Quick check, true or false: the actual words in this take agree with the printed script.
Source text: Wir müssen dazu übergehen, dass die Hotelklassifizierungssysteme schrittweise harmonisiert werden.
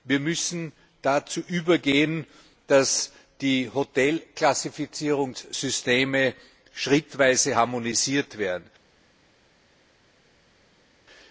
true